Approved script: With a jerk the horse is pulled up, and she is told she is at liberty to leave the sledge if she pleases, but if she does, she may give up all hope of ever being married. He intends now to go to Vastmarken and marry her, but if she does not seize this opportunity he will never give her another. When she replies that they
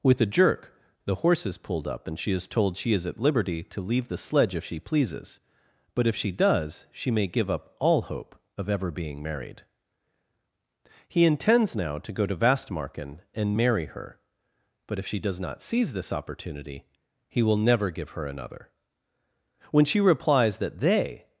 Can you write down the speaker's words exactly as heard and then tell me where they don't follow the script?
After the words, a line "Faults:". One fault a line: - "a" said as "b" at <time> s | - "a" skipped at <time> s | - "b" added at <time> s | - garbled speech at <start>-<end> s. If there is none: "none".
With a jerk the horse is pulled up, and she is told she is at liberty to leave the sledge if she pleases, but if she does, she may give up all hope of ever being married. He intends now to go to Vastmarken and marry her, but if she does not seize this opportunity he will never give her another. When she replies that they
Faults:
none